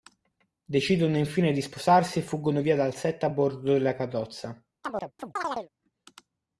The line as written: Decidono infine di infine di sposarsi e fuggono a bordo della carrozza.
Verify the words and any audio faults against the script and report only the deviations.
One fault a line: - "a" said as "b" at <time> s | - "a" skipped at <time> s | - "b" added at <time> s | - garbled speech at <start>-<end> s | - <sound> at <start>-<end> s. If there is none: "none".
- "infine di" skipped at 1.6 s
- "via dal set" added at 2.6 s
- chirp at 4.8-5.7 s